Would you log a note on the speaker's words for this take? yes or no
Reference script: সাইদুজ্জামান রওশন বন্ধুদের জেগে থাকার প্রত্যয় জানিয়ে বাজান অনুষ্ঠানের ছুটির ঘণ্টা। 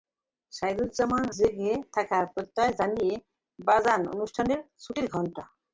yes